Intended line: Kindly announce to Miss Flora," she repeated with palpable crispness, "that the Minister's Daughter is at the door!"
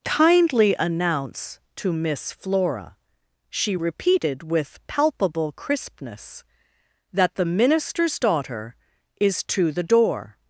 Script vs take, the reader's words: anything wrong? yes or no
yes